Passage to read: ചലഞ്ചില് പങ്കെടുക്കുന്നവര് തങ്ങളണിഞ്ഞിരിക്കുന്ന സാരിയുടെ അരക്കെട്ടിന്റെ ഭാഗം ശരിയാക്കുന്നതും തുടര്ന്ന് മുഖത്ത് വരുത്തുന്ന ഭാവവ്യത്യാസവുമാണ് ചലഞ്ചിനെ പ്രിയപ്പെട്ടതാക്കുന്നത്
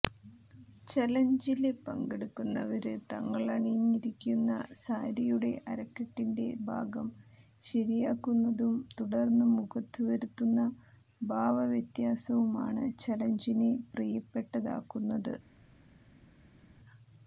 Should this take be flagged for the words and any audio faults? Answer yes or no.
no